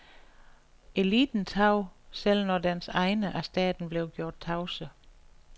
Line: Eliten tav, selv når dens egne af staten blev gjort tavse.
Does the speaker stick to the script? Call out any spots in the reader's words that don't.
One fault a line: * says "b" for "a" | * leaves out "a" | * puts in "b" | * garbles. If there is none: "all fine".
all fine